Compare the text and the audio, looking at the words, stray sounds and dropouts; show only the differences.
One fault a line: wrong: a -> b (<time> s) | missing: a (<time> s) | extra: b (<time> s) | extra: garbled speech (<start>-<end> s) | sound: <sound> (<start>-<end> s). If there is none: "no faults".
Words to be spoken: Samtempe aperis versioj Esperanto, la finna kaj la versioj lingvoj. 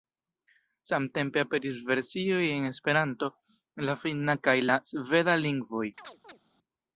extra: en (2.5 s)
wrong: versioj -> sveda (4.9 s)
sound: chirp (6.0-6.4 s)